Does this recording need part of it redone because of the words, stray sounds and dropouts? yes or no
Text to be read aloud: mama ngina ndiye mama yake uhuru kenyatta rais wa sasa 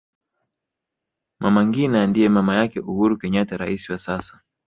no